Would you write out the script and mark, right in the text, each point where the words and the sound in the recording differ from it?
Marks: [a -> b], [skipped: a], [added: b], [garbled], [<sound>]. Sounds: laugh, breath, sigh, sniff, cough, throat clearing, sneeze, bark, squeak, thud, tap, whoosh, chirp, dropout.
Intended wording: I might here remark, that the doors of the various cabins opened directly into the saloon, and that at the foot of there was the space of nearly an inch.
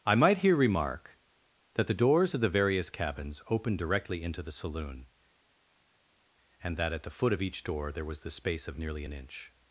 I might here remark, that the doors of the various cabins opened directly into the saloon, and that at the foot of [added: each door] there was the space of nearly an inch.